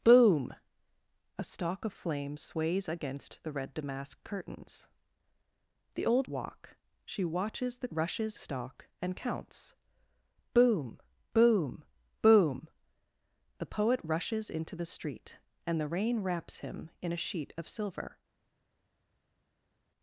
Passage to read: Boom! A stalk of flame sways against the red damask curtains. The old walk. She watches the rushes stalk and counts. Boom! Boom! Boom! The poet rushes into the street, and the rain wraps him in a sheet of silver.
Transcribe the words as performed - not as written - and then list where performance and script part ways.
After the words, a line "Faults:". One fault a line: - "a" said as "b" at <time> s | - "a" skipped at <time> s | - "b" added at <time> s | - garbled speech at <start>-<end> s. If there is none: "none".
Boom! A stalk of flame sways against the red damask curtains. The old walk. She watches the rushes stalk and counts. Boom! Boom! Boom! The poet rushes into the street, and the rain wraps him in a sheet of silver.
Faults:
none